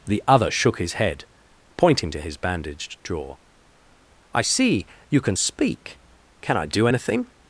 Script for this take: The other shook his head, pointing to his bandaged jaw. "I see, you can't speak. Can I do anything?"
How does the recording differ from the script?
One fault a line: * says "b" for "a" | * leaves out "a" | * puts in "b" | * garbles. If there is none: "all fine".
* says "can" for "can't"